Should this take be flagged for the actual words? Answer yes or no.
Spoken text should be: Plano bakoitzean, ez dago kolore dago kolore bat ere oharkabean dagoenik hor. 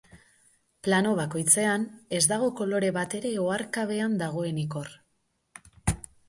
yes